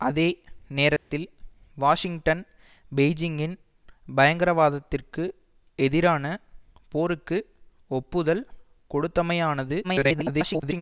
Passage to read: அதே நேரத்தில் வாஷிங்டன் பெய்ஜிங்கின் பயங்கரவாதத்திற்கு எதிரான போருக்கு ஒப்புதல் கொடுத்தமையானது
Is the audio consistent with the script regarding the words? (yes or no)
no